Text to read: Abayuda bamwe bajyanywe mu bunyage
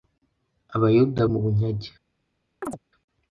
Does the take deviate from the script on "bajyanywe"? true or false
true